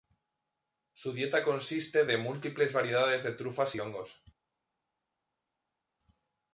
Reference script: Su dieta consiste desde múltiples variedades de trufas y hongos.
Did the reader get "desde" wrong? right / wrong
wrong